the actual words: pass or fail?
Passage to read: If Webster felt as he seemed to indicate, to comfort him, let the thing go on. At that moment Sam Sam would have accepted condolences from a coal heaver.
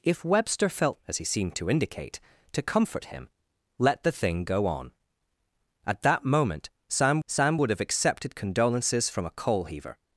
pass